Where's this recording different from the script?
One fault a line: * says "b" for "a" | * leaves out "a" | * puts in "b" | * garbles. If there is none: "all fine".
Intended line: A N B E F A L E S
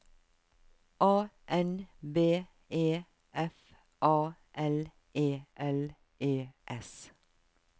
* puts in "L E"